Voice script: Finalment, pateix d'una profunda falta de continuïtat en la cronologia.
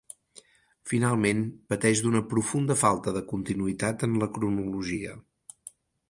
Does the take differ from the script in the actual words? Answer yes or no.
no